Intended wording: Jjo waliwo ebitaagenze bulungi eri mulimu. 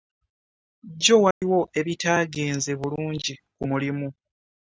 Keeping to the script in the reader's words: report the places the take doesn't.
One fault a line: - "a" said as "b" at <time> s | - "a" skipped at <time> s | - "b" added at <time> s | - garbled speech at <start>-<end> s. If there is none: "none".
- "eri" said as "ku" at 3.5 s